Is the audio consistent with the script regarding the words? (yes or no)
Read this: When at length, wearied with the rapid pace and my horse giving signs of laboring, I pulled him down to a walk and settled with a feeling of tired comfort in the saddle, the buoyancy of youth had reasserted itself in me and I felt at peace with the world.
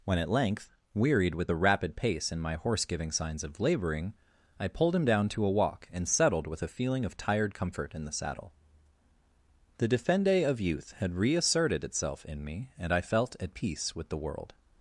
no